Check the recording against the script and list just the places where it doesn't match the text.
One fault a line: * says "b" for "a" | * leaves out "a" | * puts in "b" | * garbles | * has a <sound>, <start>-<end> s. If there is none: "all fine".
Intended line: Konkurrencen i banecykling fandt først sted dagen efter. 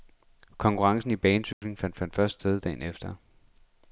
* has a dropout, 1.5-1.6 s
* puts in "fandt"